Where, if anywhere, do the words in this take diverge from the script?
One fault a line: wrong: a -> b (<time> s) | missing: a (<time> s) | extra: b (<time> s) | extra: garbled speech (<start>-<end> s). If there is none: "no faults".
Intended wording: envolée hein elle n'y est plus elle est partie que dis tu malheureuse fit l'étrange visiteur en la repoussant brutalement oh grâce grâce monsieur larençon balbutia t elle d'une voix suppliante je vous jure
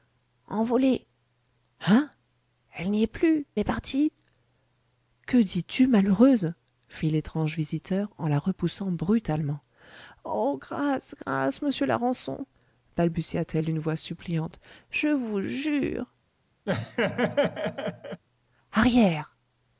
missing: elle (3.5 s)